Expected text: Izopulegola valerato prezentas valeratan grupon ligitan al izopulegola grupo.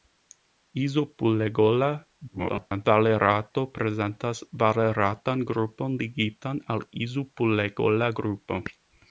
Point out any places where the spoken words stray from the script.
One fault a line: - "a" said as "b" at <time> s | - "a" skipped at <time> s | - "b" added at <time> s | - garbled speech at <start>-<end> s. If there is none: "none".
- garbled speech at 2.3-2.9 s